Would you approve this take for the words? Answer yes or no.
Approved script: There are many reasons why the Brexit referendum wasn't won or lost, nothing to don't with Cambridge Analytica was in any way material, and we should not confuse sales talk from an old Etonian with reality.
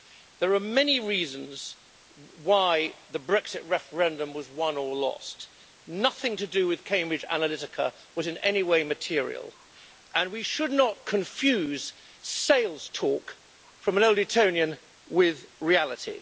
no